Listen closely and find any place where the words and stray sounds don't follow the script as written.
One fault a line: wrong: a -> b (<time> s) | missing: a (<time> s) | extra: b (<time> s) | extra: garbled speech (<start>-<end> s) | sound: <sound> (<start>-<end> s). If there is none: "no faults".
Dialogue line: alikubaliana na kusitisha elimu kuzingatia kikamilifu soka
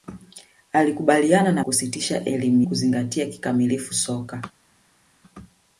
no faults